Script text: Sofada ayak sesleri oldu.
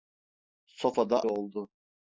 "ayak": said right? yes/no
no